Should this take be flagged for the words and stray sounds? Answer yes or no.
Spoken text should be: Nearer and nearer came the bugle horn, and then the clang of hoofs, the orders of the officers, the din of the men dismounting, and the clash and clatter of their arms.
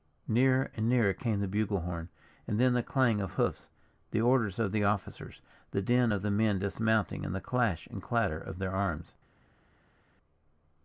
no